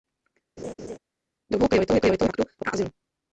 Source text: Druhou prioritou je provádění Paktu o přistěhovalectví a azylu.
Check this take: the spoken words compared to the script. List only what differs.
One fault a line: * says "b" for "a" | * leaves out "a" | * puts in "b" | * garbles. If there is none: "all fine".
* says "prioritou" for "provádění"
* leaves out "přistěhovalectví"